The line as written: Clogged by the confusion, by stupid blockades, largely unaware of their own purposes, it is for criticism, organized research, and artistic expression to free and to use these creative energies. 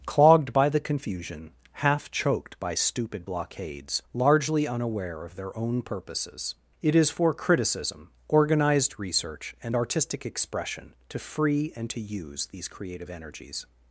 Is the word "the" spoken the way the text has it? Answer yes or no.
yes